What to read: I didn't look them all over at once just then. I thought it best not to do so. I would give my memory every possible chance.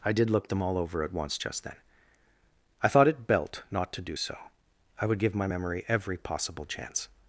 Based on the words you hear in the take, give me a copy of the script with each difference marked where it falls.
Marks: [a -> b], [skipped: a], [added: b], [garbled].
I [didn't -> did] look them all over at once just then. I thought it [best -> belt] not to do so. I would give my memory every possible chance.